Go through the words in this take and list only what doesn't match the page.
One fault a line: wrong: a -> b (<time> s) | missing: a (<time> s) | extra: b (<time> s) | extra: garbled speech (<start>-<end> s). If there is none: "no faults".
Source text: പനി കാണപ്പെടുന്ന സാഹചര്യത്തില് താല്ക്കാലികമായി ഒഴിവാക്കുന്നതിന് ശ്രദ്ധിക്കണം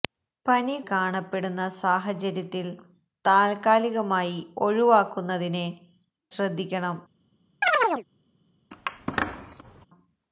no faults